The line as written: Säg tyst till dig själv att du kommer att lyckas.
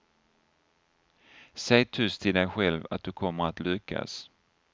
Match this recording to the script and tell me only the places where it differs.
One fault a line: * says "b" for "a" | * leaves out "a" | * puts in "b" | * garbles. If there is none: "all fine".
all fine